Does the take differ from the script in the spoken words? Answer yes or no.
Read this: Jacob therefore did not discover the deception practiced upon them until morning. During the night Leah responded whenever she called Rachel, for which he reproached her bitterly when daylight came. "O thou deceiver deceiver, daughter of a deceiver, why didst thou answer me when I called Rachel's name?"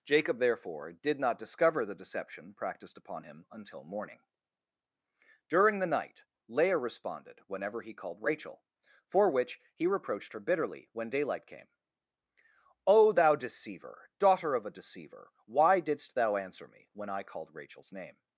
yes